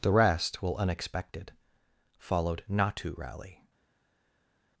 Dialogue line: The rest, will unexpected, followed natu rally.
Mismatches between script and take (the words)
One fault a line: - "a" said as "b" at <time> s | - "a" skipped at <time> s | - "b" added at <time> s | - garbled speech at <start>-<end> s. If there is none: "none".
none